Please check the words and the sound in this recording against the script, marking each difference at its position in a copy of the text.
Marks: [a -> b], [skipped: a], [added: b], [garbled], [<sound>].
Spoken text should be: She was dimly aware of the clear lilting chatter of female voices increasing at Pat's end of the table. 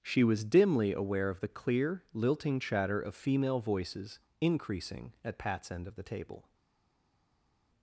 She was dimly aware of the clear lilting chatter of female voices increasing at Pat's end of the table.